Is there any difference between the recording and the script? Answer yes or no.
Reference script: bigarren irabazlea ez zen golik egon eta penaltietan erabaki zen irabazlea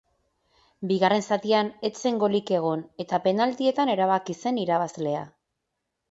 yes